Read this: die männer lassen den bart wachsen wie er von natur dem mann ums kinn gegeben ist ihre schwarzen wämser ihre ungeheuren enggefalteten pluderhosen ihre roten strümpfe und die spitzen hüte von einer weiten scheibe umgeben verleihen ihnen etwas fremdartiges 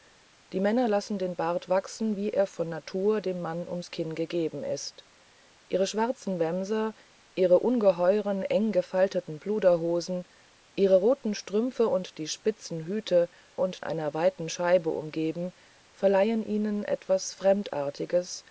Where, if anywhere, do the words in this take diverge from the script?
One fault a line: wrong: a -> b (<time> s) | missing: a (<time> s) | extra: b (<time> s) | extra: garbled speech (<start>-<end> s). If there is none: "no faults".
wrong: von -> und (13.6 s)